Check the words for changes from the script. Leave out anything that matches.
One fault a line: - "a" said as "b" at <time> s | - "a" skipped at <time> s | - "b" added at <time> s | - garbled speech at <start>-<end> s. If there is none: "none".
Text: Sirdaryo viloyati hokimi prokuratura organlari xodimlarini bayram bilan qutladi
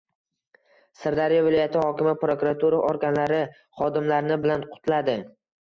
- "bayram" skipped at 4.4 s